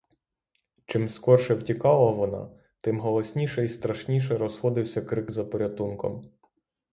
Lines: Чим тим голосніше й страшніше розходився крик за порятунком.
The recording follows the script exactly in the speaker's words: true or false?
false